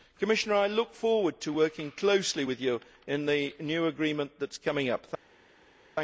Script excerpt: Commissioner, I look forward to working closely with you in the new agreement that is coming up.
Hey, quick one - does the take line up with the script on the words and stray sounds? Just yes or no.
yes